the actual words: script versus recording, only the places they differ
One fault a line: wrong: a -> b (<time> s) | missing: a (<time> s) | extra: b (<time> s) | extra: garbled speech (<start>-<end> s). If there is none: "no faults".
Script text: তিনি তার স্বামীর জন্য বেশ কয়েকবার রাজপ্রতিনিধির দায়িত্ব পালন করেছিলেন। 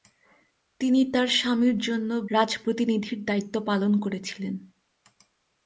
missing: বেশ কয়েকবার (2.1 s)